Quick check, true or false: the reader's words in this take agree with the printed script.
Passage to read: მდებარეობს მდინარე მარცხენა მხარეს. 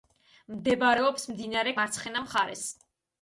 true